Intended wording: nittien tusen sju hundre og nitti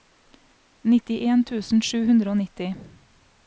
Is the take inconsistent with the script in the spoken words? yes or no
no